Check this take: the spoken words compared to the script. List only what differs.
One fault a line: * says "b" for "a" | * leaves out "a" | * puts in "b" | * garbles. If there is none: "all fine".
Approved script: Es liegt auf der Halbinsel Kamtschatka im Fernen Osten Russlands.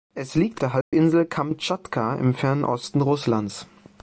* leaves out "auf"